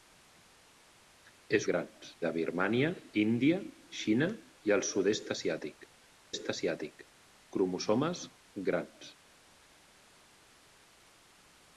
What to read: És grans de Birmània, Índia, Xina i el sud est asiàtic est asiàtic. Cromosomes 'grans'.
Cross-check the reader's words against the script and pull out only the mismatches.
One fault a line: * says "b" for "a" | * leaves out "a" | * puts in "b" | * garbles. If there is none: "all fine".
all fine